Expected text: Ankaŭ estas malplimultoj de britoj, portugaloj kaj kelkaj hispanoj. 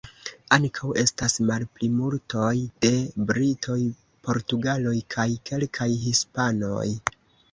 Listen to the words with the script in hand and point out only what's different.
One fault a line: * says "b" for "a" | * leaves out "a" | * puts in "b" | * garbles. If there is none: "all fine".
all fine